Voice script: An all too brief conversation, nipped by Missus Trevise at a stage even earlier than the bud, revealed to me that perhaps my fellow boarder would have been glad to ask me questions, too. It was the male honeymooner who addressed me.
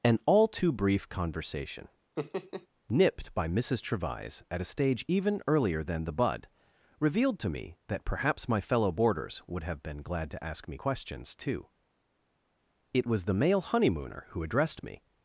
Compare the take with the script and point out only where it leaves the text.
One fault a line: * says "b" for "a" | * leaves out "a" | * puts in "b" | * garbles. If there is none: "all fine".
* says "boarders" for "boarder"